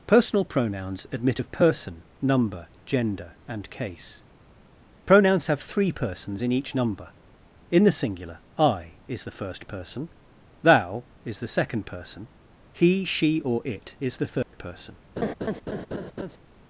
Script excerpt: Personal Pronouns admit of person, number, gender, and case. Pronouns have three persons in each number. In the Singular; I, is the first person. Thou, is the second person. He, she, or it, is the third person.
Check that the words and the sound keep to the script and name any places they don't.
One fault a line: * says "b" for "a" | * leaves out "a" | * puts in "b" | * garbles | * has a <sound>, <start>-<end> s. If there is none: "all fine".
* has a dropout, 14.4-14.5 s
* has a laugh, 15.2-16.4 s